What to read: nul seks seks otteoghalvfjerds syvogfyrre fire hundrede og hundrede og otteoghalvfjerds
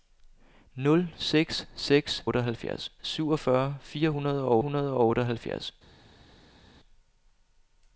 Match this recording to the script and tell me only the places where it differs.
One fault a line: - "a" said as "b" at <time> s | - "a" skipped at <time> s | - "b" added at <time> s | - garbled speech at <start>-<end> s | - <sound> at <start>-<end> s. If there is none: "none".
none